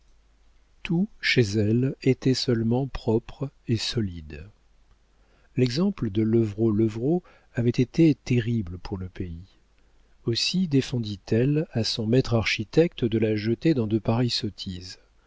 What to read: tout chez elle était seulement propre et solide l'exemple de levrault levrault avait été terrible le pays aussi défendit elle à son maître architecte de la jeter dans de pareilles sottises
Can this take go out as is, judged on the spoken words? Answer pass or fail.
fail